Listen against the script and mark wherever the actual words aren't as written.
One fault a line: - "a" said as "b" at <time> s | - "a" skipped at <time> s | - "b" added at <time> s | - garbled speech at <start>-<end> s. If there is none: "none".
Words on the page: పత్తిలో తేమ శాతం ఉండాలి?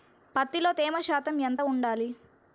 - "ఎంత" added at 1.4 s